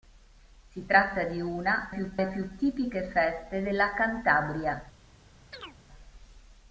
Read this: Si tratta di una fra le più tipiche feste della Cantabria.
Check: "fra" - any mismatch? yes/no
yes